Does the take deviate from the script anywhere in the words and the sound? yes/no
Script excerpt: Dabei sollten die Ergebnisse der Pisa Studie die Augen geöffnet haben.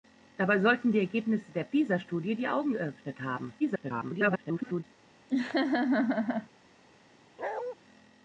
yes